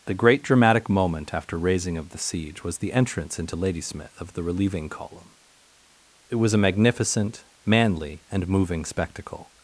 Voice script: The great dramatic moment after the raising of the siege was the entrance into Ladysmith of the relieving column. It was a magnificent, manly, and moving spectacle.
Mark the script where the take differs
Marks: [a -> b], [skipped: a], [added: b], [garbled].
The great dramatic moment after [skipped: the] raising of the siege was the entrance into Ladysmith of the relieving column. It was a magnificent, manly, and moving spectacle.